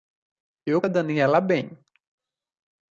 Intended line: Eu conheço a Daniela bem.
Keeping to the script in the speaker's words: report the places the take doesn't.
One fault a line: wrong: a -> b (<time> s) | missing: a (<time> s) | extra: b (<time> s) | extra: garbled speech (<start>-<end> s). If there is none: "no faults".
missing: conheço (0.8 s)